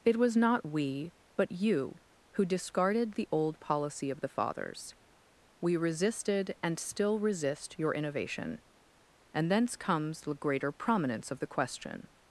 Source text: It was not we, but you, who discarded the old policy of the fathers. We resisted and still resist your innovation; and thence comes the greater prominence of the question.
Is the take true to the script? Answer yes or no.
yes